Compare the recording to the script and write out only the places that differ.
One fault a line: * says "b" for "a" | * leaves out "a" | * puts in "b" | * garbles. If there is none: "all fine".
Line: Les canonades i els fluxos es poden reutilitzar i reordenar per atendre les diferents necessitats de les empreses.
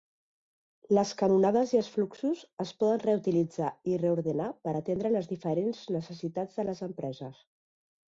all fine